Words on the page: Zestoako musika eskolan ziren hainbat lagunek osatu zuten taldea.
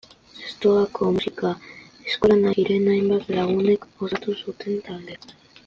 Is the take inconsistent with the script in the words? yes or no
no